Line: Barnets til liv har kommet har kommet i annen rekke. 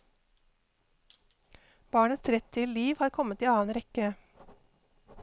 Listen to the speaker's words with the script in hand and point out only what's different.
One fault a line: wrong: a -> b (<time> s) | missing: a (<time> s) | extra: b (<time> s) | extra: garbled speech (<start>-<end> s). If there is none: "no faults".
extra: rett (2.3 s)
missing: har kommet (3.4 s)